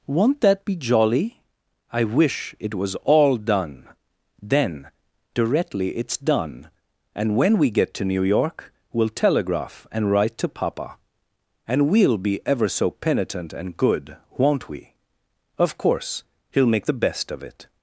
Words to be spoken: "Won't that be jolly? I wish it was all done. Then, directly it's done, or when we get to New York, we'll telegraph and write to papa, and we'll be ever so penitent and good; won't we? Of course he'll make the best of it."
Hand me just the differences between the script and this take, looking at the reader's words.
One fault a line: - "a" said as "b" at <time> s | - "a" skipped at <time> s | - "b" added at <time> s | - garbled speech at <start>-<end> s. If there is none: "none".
- "or" said as "and" at 7.2 s